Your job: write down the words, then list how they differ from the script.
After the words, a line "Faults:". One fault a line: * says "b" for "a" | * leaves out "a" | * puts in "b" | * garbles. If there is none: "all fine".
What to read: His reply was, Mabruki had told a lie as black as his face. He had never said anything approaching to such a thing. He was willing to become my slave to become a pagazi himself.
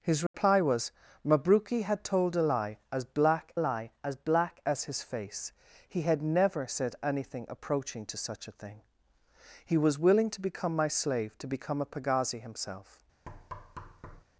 His reply was, Mabruki had told a lie as black lie as black as his face. He had never said anything approaching to such a thing. He was willing to become my slave to become a pagazi himself.
Faults:
* puts in "lie as black"